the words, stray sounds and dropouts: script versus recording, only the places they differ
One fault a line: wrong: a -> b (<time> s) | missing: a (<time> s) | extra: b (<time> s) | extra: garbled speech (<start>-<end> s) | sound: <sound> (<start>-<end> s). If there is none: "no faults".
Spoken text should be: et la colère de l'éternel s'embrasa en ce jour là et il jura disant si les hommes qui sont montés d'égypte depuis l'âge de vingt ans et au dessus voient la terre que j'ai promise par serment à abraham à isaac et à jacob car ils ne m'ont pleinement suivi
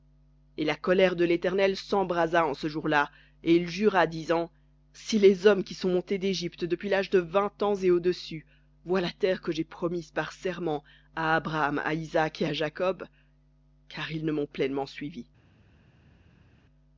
no faults